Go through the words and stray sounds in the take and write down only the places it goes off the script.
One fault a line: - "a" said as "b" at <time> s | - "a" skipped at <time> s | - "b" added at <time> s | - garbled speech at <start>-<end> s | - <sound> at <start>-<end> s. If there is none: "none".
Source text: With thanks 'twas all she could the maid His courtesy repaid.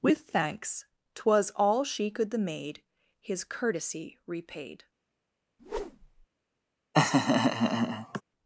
- whoosh at 5.6-6.3 s
- laugh at 6.9-8.2 s